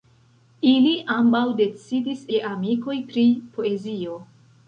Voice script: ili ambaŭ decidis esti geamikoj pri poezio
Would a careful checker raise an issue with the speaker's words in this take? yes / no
yes